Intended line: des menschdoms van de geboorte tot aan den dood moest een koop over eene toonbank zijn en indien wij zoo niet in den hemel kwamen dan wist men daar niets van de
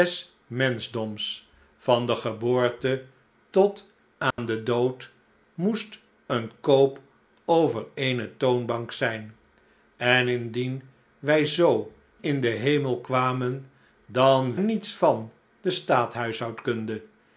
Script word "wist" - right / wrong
wrong